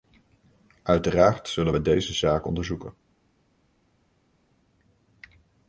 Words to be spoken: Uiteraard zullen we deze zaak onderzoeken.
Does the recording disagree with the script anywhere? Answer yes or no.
no